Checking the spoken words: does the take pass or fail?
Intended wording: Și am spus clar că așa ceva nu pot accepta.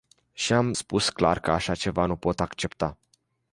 pass